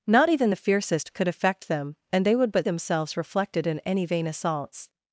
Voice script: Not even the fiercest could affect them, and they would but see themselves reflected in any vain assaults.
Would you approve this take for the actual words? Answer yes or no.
no